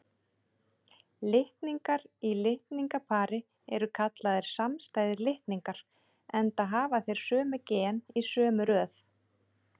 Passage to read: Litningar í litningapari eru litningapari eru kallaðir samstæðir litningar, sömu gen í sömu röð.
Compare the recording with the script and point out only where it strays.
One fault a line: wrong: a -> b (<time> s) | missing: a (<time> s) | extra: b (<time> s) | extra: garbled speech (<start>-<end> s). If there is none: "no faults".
missing: litningapari eru (3.9 s)
extra: enda hafa þeir (6.4 s)